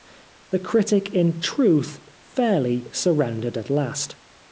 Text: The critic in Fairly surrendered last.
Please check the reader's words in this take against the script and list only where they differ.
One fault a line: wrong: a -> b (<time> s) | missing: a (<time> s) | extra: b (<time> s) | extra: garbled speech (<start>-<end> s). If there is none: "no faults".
extra: Truth (1.4 s)
extra: at (3.5 s)